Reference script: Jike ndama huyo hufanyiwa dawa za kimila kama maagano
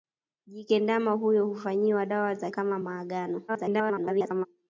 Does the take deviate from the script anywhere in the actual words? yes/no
yes